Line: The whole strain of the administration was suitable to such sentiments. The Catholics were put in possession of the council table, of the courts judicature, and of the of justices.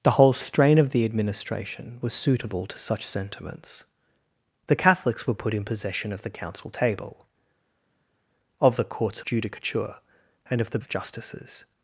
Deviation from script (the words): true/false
false